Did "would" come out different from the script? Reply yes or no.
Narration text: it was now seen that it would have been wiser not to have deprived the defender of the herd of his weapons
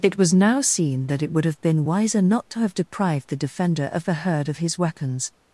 no